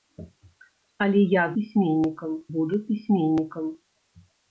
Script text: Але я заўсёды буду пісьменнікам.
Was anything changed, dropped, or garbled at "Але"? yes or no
no